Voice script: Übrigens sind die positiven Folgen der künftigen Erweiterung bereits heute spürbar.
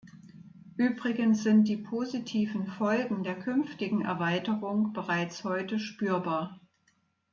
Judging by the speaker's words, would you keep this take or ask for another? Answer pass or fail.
pass